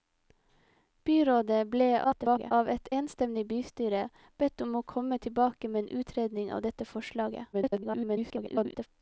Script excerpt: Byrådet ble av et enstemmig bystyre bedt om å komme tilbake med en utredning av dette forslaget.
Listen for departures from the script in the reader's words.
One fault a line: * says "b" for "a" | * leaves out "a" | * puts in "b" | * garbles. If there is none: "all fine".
* garbles
* garbles